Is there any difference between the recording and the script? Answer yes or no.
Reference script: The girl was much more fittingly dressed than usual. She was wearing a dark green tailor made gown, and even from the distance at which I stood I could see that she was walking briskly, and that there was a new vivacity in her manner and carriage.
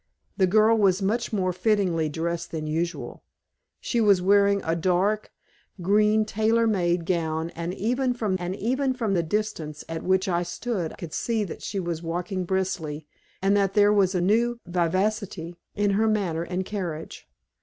yes